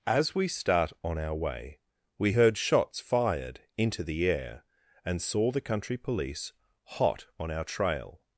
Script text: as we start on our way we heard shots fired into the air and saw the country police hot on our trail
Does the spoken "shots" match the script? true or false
true